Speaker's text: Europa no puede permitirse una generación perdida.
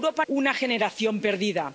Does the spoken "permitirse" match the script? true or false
false